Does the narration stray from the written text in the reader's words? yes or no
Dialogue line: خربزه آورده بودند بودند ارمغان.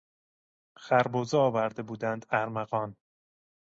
yes